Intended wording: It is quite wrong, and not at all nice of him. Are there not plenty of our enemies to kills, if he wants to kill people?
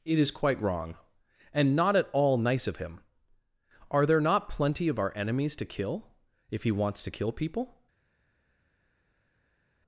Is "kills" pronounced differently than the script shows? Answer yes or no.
yes